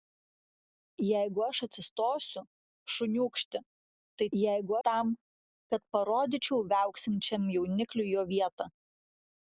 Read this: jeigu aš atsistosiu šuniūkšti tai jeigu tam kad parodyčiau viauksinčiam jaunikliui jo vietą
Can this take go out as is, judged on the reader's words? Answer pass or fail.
pass